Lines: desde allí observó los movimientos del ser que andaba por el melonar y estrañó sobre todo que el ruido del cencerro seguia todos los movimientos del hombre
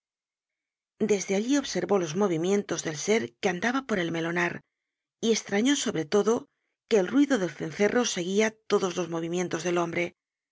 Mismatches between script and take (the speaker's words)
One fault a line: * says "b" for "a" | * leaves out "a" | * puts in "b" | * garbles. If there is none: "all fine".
all fine